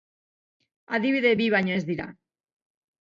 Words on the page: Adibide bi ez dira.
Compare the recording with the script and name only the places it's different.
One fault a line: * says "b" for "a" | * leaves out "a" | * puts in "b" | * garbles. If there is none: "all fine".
* puts in "baino"